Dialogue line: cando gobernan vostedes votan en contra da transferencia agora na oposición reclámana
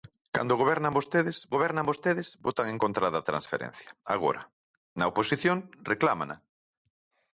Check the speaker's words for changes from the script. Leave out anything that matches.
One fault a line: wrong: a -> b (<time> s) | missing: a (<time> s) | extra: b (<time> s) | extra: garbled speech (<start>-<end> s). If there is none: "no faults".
extra: gobernan vostedes (1.5 s)